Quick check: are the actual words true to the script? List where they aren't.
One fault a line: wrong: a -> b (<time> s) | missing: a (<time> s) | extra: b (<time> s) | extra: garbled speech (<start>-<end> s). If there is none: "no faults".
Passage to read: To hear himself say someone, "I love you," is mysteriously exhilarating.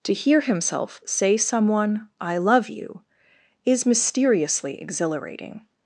no faults